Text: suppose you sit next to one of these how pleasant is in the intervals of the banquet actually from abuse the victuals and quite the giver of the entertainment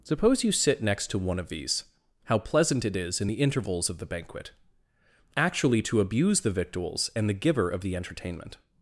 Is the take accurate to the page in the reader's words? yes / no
no